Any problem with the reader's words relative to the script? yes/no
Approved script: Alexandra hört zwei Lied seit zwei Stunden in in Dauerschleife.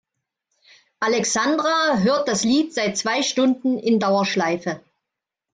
yes